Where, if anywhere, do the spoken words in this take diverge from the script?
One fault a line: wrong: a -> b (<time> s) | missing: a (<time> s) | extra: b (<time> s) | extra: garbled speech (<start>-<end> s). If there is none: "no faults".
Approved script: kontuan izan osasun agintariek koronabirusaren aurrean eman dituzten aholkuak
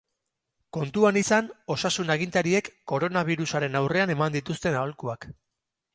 no faults